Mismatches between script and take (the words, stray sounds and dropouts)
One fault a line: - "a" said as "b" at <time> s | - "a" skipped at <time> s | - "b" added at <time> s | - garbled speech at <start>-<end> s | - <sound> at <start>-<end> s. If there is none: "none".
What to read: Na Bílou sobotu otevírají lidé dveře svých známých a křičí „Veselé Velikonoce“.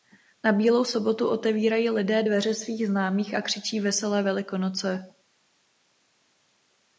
none